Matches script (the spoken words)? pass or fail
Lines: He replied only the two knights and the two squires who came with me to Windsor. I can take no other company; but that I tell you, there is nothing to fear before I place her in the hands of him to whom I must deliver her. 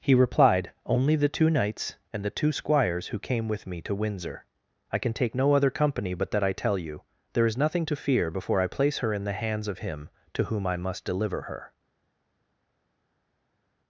pass